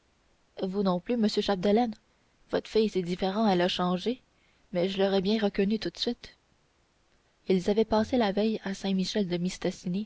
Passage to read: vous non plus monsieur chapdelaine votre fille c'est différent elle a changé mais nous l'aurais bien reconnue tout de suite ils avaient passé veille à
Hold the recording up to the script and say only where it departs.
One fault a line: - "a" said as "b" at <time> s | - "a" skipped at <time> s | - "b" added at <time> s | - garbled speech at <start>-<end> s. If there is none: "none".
- "nous" said as "je" at 4.9 s
- "la" added at 8.2 s